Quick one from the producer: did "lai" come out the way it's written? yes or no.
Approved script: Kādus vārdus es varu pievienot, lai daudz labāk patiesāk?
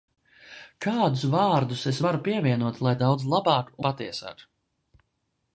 yes